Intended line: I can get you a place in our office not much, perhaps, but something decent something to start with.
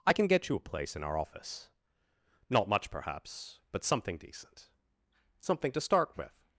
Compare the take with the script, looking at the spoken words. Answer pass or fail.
pass